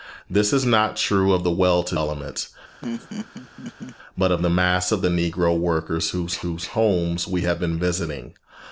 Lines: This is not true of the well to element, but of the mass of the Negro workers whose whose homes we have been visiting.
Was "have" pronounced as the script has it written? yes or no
yes